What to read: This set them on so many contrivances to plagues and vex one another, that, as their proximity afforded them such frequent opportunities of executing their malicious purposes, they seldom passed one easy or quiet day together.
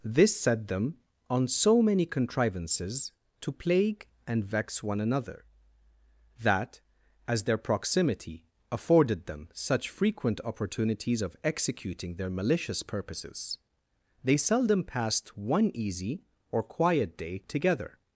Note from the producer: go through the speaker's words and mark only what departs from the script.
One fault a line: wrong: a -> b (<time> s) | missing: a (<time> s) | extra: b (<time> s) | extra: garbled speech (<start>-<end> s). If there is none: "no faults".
wrong: plagues -> plague (3.5 s)